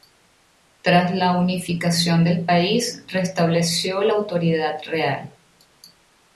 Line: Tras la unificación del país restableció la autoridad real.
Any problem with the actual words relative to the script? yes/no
no